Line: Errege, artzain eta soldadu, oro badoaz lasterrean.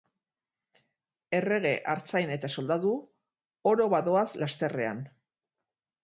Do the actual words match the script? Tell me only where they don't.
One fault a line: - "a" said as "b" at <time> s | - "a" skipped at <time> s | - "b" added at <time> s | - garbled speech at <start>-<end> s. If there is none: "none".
none